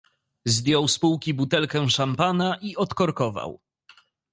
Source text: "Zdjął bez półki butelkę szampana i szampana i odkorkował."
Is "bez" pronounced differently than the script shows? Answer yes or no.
yes